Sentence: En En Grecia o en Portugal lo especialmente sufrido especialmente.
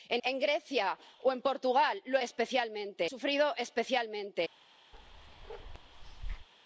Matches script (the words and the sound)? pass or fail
fail